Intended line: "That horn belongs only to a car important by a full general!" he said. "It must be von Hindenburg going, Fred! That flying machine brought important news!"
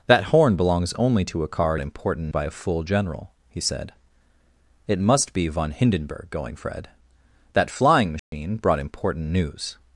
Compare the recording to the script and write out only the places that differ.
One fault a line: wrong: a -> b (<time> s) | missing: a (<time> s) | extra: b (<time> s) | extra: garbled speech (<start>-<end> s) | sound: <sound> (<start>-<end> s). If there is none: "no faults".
sound: dropout (8.2-8.3 s)